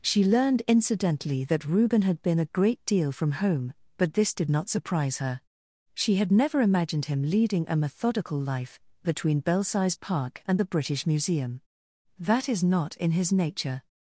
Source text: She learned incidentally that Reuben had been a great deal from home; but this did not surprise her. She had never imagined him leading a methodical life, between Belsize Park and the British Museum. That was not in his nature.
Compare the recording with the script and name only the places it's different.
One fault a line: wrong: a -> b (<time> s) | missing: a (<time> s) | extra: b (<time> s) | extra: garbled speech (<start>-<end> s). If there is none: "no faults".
wrong: was -> is (12.5 s)